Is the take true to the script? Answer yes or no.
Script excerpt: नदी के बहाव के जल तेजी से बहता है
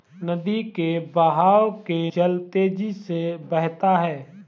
yes